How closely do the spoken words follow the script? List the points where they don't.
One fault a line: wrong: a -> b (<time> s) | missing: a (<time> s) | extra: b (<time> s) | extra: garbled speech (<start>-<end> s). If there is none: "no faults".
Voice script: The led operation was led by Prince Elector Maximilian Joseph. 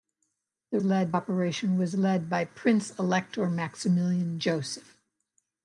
no faults